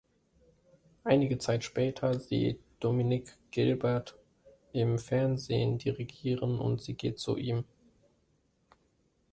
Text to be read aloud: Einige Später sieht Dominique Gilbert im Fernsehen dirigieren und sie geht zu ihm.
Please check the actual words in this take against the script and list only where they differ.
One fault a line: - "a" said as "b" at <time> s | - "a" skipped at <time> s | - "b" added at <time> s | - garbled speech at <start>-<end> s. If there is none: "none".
- "Zeit" added at 1.4 s